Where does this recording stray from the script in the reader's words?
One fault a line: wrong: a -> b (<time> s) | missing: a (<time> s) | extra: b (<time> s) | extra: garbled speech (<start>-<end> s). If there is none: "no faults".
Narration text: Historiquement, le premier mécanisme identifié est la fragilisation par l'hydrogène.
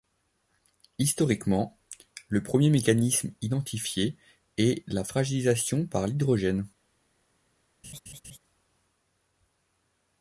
no faults